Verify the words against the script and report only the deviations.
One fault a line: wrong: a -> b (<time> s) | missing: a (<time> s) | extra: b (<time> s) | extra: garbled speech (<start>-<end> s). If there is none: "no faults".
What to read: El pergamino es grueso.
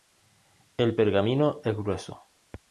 no faults